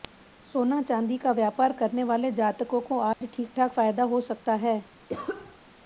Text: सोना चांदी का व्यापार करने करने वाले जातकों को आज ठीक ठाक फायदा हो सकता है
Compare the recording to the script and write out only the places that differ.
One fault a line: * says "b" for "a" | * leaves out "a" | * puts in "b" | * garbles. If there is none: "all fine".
* leaves out "करने"